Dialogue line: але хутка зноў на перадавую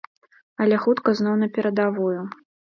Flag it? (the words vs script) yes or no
no